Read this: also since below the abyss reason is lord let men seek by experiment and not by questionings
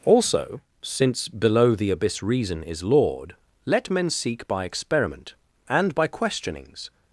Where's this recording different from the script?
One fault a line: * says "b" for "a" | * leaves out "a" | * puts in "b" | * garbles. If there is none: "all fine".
* leaves out "not"